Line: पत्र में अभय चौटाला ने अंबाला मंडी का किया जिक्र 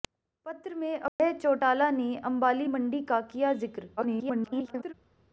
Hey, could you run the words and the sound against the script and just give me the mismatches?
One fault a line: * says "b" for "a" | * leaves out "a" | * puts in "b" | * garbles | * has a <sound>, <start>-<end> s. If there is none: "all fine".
* has a dropout, 1.1-1.2 s
* garbles